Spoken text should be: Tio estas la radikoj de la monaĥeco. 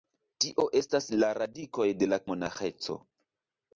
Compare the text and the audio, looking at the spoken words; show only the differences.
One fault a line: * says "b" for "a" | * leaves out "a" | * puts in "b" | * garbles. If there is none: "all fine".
all fine